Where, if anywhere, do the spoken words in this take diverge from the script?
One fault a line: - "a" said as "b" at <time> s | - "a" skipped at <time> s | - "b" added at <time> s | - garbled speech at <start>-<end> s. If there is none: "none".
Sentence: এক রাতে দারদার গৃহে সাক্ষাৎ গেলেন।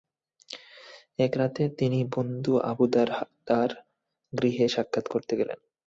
- "তিনি বন্ধু আবু" added at 1.8 s
- "করতে" added at 5.1 s